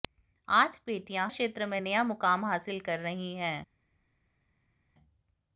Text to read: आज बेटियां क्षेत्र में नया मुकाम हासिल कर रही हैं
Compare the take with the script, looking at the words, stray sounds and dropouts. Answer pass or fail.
pass